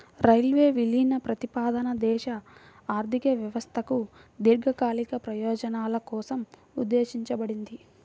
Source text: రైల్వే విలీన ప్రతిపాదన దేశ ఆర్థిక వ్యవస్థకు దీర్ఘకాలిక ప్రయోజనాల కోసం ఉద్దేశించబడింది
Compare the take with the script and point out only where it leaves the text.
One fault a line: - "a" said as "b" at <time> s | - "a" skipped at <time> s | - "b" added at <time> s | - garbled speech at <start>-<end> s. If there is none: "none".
none